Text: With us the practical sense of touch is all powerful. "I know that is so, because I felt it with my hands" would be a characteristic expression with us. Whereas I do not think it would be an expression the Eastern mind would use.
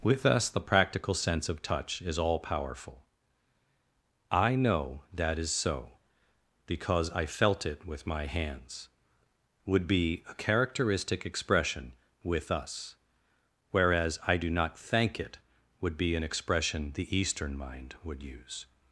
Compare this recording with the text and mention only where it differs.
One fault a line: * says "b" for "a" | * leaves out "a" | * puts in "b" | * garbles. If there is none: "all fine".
* says "thank" for "think"